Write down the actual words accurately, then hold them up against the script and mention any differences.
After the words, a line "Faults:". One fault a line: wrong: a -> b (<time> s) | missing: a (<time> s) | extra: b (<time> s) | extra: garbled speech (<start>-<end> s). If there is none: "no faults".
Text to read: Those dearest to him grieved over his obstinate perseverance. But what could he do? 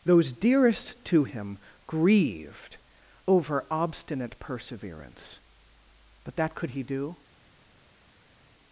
Those dearest to him grieved over obstinate perseverance. But that could he do?
Faults:
missing: his (3.6 s)
wrong: what -> that (6.3 s)